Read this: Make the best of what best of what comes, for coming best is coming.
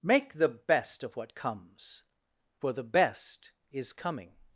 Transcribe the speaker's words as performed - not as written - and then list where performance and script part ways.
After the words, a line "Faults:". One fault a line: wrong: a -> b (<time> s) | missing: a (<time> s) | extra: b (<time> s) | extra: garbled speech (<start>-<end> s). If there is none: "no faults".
Make the best of what comes, for the best is coming.
Faults:
missing: best of what (1.4 s)
wrong: coming -> the (2.7 s)